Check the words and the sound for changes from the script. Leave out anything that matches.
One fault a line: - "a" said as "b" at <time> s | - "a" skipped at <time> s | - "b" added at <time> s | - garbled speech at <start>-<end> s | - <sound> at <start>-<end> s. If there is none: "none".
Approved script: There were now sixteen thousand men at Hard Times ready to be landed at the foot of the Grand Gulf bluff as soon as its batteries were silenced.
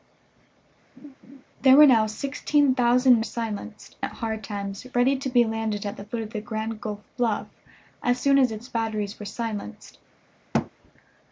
- laugh at 1.0-1.4 s
- "men" said as "silenced" at 3.2 s
- thud at 10.5-10.7 s